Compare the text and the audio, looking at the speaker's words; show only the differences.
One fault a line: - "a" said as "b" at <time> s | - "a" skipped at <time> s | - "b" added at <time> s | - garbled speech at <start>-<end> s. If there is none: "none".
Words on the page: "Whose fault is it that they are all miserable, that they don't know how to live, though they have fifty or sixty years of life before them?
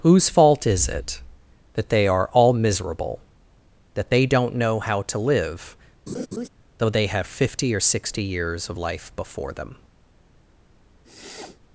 none